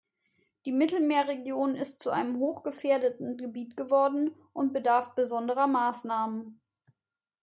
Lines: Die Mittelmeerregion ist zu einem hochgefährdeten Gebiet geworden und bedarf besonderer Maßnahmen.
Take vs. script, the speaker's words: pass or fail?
pass